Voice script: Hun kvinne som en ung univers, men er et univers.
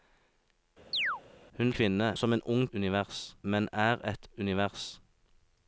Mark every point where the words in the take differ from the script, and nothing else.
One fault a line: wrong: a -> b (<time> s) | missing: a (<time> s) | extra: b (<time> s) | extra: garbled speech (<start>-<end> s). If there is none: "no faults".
no faults